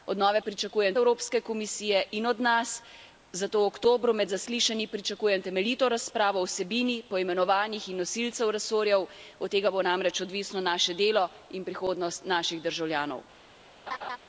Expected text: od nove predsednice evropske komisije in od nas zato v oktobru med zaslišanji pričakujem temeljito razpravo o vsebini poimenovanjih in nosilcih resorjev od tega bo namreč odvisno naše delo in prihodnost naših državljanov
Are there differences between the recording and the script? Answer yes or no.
yes